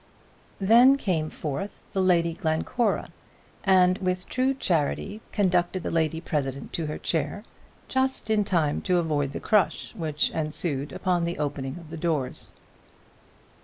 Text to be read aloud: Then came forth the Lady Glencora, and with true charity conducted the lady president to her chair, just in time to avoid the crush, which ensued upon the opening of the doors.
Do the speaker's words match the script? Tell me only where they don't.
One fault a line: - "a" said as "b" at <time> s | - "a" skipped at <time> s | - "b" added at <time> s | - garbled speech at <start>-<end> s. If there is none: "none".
none